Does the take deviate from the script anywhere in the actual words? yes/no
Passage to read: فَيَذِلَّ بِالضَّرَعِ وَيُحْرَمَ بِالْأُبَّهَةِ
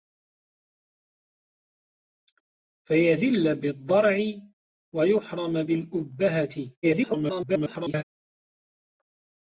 yes